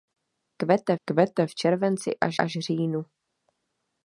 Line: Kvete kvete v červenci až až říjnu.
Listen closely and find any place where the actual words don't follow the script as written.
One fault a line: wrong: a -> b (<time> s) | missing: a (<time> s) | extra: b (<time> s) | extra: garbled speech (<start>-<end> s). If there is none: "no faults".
no faults